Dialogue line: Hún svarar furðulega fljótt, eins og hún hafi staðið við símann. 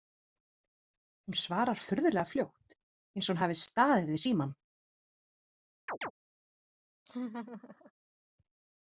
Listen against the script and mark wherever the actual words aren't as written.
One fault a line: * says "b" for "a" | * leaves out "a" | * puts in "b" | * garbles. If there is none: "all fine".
all fine